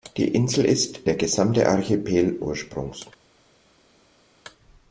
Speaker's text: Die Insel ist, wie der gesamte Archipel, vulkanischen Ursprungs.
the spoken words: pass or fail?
fail